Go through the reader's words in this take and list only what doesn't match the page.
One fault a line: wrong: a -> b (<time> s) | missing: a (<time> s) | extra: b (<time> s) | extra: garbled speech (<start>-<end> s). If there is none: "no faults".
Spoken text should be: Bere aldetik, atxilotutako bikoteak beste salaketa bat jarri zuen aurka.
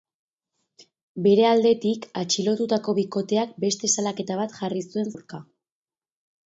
no faults